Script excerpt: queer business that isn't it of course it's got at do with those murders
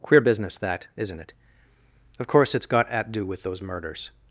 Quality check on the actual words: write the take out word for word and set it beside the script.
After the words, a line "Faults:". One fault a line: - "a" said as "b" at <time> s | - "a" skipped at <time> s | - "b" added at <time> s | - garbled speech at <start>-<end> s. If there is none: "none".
queer business that isn't it of course it's got at do with those murders
Faults:
none